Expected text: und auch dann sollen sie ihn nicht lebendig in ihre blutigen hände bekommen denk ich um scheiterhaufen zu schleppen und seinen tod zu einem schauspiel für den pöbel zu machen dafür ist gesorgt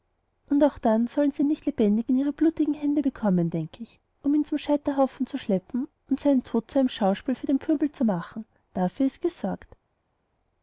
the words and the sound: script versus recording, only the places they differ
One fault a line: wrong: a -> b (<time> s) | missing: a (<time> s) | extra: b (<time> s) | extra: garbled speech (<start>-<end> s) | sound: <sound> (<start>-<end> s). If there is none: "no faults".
extra: ihn zum (4.3 s)